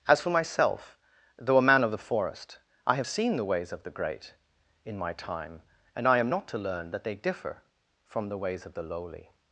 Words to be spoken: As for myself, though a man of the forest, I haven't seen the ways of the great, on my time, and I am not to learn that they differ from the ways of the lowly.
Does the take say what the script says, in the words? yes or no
no